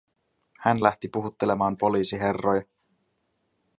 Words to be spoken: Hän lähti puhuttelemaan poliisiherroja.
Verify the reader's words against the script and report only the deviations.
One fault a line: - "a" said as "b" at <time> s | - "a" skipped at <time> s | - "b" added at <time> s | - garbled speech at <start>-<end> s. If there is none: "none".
none